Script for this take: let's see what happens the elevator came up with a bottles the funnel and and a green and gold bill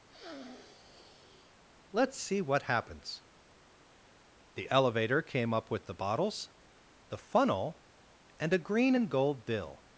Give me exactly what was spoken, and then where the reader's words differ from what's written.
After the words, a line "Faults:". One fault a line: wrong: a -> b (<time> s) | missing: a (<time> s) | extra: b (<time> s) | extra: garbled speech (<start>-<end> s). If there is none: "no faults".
let's see what happens the elevator came up with the bottles the funnel and a green and gold bill
Faults:
wrong: a -> the (5.9 s)
missing: and (8.5 s)